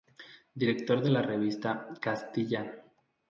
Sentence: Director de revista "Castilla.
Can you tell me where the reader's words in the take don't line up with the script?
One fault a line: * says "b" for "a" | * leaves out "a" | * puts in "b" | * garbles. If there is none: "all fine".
* puts in "la"